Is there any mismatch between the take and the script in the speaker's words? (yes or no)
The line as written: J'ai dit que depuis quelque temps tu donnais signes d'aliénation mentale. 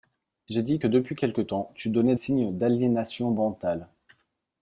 no